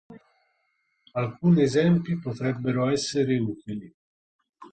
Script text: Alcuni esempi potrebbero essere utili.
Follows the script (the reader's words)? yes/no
yes